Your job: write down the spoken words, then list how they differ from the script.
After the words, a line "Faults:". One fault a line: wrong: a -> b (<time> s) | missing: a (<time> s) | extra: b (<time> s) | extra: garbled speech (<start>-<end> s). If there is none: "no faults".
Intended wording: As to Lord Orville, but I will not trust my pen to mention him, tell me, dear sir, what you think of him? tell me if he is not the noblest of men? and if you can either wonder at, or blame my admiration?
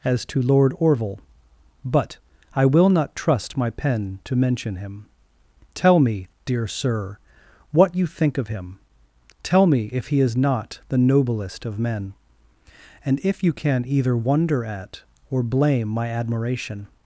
As to Lord Orville, but I will not trust my pen to mention him, tell me, dear sir, what you think of him? tell me if he is not the noblest of men? and if you can either wonder at, or blame my admiration?
Faults:
no faults